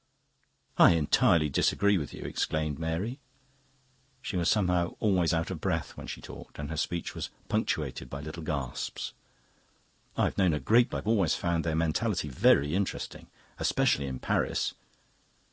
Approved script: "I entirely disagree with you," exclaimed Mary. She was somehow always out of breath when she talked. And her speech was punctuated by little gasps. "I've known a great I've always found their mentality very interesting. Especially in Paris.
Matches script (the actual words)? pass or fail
pass